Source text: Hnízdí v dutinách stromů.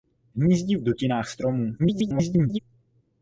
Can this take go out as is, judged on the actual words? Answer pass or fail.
fail